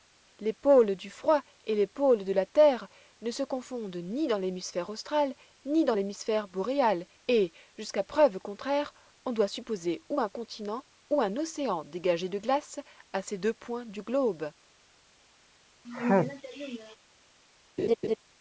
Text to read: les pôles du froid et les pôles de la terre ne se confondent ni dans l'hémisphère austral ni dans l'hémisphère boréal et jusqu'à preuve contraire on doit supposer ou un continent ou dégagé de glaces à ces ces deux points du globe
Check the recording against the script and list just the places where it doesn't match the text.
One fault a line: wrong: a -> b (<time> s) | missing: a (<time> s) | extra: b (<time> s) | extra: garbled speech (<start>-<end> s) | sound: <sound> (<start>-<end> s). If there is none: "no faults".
extra: un océan (11.2 s)
missing: ces (13.4 s)
sound: sneeze (15.8-17.0 s)
sound: laugh (17.8-18.2 s)